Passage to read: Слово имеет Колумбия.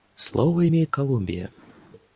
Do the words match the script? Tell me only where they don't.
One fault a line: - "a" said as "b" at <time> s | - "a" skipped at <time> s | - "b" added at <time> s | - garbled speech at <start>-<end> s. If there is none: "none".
none